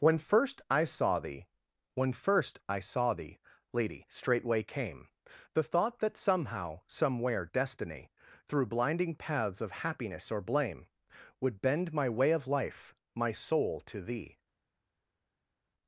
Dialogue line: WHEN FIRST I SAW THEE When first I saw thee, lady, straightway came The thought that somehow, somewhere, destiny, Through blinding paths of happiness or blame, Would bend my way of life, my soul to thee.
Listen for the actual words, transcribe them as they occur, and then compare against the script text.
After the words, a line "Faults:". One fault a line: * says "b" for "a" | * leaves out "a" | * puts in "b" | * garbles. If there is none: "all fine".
WHEN FIRST I SAW THEE When first I saw thee, lady, straightway came The thought that somehow, somewhere, destiny, Through blinding paths of happiness or blame, Would bend my way of life, my soul to thee.
Faults:
all fine